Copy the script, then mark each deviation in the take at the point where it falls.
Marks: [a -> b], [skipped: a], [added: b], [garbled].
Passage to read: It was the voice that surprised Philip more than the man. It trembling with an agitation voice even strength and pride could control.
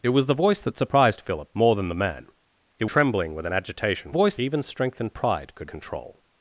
It was the voice that surprised Philip more than the man. It trembling with an agitation voice even strength and pride could control.